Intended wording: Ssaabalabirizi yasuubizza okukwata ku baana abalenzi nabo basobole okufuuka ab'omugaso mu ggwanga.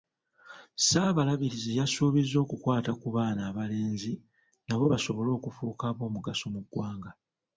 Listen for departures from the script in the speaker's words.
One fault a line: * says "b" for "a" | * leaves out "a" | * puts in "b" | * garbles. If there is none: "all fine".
all fine